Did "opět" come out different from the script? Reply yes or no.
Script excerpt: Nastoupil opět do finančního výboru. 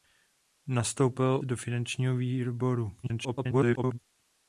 yes